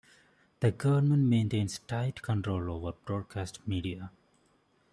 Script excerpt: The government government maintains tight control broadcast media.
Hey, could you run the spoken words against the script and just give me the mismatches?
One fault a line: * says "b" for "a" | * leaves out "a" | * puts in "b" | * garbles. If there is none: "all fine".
* leaves out "government"
* puts in "over"